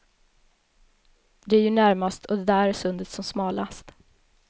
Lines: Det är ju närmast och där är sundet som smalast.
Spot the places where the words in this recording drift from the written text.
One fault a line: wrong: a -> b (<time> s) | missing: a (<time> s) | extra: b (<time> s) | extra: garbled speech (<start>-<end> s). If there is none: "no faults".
no faults